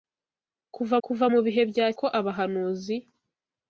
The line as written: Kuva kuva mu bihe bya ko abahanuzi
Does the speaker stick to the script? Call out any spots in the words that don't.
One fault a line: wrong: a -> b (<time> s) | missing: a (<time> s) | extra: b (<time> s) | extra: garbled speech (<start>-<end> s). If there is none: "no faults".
no faults